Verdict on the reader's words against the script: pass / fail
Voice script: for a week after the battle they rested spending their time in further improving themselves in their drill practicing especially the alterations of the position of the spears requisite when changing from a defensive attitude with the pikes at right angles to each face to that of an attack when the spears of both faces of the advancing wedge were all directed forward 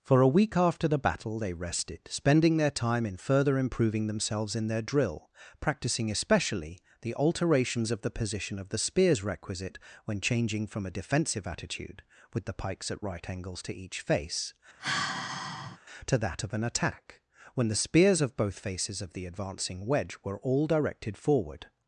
pass